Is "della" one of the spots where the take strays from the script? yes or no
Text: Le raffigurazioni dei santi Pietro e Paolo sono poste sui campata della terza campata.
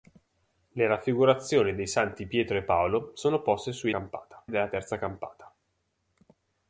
no